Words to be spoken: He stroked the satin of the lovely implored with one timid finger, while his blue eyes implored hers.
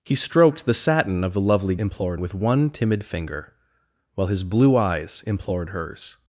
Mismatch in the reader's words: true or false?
false